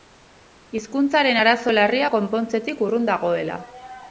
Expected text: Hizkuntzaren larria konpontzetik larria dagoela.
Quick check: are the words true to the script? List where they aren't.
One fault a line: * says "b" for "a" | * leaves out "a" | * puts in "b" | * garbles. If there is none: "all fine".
* puts in "arazo"
* says "urrun" for "larria"